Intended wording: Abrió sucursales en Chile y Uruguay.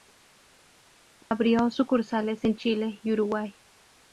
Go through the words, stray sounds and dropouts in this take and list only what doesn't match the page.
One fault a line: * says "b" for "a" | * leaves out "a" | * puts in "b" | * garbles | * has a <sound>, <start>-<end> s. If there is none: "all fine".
* has a dropout, 1.2-1.3 s